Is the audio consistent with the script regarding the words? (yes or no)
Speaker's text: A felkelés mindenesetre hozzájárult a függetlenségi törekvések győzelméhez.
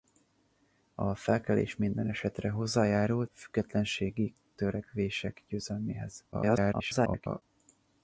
no